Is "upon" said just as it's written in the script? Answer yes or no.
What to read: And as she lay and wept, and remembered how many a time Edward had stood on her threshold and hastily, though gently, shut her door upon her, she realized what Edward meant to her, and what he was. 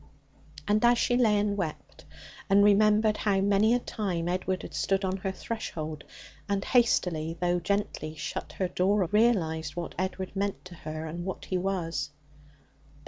no